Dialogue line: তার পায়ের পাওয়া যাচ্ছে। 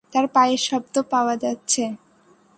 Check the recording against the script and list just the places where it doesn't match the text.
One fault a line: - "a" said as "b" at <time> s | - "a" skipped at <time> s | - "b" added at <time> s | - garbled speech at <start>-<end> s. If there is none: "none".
- "শব্দ" added at 0.6 s